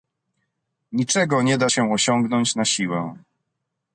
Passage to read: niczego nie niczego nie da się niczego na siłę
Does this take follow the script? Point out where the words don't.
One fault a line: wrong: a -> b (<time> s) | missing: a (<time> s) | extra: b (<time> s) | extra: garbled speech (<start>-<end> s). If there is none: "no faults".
missing: niczego nie (1.6 s)
wrong: niczego -> osiągnąć (1.9 s)